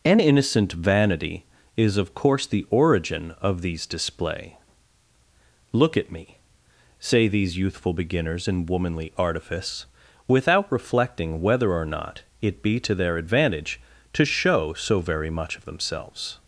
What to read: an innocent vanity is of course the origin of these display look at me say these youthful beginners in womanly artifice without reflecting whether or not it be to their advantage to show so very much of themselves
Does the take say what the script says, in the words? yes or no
yes